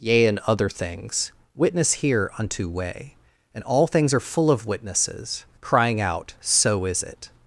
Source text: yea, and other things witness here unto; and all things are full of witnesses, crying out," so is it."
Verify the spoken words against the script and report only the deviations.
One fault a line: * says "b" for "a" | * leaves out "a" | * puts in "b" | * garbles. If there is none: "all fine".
* puts in "way"